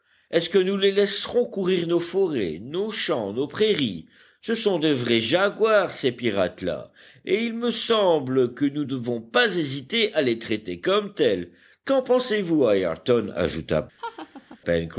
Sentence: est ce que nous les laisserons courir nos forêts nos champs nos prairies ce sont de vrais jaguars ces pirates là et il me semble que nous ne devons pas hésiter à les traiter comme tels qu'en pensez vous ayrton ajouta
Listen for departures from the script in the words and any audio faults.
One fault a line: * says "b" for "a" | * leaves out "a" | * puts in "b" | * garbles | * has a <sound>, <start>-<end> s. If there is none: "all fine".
* leaves out "ne"
* has a laugh, 14.0-14.6 s